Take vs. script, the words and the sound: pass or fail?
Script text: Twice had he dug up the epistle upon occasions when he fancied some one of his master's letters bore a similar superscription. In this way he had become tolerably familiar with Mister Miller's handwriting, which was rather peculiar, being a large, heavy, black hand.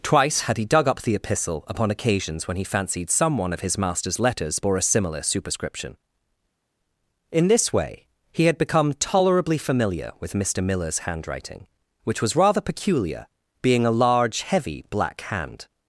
pass